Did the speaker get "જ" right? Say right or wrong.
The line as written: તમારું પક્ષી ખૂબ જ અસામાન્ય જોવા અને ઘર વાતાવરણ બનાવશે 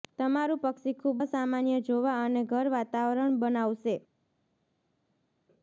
wrong